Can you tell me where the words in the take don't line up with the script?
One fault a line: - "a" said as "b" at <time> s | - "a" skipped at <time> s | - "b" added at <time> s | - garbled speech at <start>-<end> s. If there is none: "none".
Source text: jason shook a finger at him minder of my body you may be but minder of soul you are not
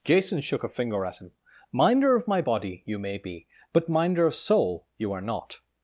none